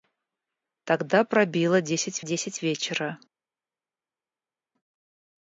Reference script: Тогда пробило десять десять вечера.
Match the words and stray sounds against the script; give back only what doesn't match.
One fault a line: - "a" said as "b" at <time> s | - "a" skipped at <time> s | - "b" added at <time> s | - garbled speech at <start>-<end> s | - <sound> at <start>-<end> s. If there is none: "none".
none